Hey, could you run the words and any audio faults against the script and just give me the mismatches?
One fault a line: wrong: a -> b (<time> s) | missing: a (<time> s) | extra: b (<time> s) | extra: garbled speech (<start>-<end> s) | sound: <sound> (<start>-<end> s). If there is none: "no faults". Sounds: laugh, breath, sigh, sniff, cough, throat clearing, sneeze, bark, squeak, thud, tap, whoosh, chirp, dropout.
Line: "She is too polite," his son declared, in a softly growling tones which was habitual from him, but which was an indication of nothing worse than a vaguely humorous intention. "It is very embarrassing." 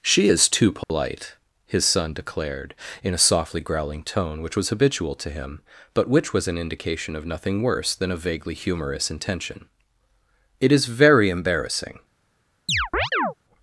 sound: dropout (0.8-0.9 s)
wrong: tones -> tone (4.0 s)
wrong: from -> to (5.2 s)
sound: chirp (12.7-13.3 s)